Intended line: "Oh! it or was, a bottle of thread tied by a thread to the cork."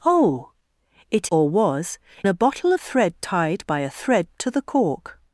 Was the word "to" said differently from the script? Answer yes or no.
no